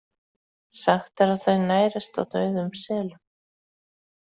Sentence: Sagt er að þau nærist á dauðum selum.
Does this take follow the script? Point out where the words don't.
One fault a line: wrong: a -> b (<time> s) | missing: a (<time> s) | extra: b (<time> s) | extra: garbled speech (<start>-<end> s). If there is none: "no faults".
no faults